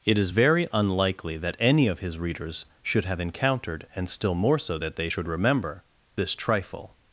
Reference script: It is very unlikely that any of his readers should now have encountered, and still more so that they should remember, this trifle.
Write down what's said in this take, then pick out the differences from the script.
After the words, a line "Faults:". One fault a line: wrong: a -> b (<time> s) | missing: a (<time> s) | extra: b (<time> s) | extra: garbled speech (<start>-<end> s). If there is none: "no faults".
It is very unlikely that any of his readers should have encountered, and still more so that they should remember, this trifle.
Faults:
missing: now (3.0 s)